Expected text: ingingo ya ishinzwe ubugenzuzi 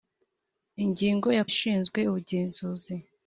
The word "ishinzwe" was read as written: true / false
true